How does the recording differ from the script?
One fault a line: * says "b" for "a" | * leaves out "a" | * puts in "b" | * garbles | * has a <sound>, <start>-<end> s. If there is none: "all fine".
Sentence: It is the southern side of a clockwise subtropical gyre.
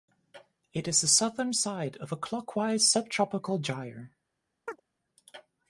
* has a chirp, 4.7-4.8 s